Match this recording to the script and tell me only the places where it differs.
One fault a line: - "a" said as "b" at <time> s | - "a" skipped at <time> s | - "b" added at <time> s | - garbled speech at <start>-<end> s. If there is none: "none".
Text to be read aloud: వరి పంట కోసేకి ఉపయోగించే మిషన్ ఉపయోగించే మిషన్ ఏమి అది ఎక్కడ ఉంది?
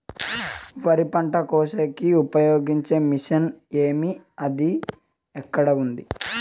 - "ఉపయోగించే మిషన్" skipped at 3.5 s